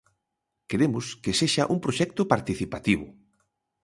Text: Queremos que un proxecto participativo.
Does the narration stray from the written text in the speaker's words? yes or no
yes